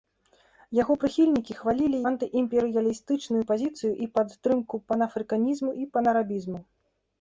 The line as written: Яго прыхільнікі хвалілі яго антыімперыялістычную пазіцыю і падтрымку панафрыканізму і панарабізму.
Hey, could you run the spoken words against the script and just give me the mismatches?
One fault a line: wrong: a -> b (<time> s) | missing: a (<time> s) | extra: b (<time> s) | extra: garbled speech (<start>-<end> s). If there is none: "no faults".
missing: яго (2.0 s)